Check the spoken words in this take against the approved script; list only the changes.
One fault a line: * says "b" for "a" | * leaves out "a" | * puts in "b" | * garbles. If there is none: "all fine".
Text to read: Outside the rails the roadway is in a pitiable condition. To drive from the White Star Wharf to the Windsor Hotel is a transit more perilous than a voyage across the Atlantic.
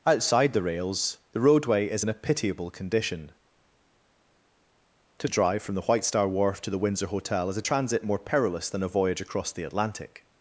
all fine